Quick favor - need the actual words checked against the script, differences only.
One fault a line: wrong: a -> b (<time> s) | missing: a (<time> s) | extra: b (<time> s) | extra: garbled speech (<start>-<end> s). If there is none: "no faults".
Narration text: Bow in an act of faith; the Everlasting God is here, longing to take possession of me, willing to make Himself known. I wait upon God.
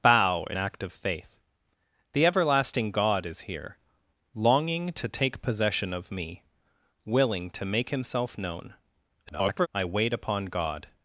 missing: an (0.6 s)
extra: garbled speech (9.3-9.7 s)